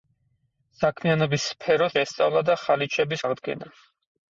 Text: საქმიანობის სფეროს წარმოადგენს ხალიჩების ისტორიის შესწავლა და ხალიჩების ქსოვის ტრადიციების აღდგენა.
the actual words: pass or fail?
fail